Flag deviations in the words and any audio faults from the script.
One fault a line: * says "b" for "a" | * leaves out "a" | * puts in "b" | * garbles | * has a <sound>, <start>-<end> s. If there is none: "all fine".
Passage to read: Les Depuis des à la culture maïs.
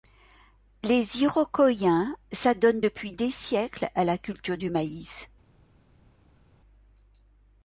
* puts in "Iroquoiens s'adonnent"
* puts in "siècles"
* puts in "du"